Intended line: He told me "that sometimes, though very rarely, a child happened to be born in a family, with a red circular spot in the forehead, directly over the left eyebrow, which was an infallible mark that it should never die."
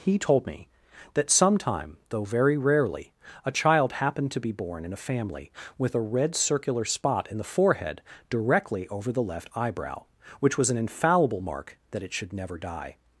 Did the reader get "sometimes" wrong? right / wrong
wrong